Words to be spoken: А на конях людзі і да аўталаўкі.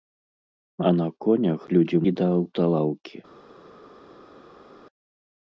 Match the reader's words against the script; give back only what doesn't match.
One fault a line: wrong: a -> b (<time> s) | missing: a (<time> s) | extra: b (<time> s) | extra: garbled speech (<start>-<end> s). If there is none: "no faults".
no faults